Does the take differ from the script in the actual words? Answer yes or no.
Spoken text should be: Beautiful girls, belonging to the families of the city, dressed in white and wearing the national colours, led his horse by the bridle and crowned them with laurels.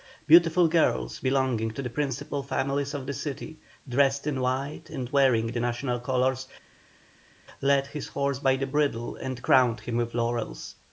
yes